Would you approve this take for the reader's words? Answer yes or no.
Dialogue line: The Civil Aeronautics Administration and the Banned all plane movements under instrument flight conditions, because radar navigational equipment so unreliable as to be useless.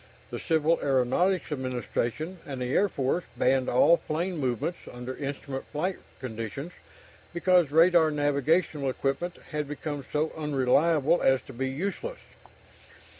no